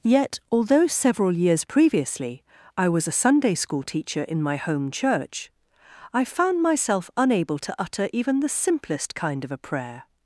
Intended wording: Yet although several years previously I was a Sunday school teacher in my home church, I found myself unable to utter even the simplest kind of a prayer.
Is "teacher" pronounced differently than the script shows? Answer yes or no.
no